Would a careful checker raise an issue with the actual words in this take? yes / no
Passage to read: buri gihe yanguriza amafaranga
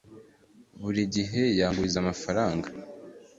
no